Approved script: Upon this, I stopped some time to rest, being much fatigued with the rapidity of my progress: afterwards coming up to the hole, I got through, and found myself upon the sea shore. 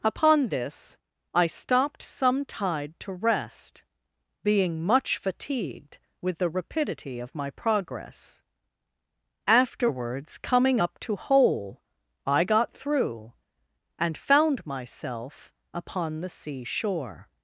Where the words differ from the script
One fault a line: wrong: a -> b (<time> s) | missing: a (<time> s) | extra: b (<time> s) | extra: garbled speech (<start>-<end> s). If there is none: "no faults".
wrong: time -> tide (2.4 s)
missing: the (11.1 s)